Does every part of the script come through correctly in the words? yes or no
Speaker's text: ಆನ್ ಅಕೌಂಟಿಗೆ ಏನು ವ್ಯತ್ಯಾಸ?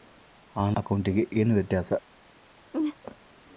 yes